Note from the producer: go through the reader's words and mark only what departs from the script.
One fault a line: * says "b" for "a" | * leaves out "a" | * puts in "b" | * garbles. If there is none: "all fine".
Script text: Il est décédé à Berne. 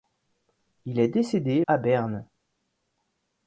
all fine